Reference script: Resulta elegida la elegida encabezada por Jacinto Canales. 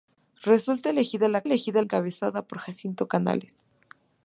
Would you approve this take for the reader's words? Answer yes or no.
yes